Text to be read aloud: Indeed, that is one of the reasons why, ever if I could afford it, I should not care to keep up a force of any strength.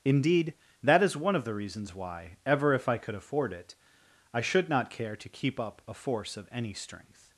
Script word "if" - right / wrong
right